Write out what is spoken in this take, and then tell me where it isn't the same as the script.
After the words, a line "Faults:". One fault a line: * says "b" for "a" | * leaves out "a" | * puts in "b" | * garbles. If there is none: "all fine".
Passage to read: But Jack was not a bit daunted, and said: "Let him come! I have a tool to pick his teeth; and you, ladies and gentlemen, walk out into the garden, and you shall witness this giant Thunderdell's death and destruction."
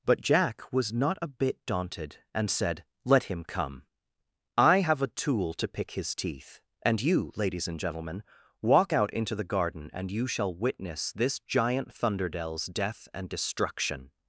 But Jack was not a bit daunted, and said: "Let him come! I have a tool to pick his teeth; and you, ladies and gentlemen, walk out into the garden, and you shall witness this giant Thunderdell's death and destruction."
Faults:
all fine